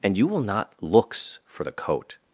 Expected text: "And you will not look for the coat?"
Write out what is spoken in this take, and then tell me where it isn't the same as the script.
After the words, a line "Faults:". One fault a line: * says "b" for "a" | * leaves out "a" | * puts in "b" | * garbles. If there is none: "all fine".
"And you will not looks for the coat?"
Faults:
* says "looks" for "look"